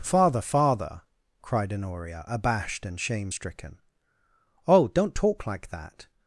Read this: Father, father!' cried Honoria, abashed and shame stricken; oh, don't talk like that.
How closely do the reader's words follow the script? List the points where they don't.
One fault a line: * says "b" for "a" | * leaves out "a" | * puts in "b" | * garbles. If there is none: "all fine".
all fine